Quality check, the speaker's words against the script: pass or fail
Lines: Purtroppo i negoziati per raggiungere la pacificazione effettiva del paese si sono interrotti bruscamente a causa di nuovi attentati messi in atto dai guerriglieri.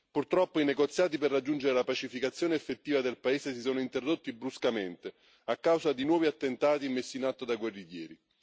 pass